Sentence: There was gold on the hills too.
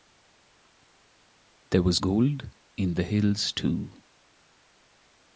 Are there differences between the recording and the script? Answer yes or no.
yes